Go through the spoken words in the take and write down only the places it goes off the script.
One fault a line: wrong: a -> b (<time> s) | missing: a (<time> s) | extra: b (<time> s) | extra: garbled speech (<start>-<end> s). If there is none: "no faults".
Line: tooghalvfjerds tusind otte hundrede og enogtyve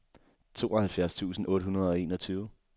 no faults